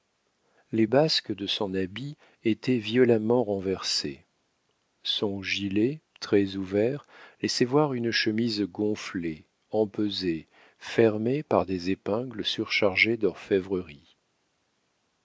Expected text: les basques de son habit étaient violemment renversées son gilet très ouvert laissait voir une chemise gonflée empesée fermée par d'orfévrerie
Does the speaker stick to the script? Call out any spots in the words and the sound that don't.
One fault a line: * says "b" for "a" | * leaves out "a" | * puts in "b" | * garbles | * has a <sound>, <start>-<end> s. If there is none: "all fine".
* puts in "des épingles surchargées"